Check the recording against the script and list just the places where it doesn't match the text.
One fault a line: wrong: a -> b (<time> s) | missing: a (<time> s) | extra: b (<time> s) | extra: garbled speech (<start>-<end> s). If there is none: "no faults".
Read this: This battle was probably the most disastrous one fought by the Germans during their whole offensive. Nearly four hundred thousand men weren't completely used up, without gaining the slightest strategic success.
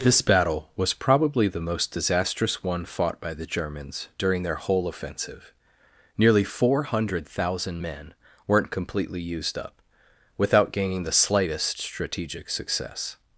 no faults